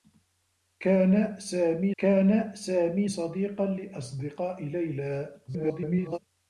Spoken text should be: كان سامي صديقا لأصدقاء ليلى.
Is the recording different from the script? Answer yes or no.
yes